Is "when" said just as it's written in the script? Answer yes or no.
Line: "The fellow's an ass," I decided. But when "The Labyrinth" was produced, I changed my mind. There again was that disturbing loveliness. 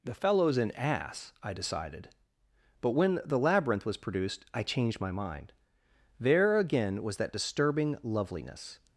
yes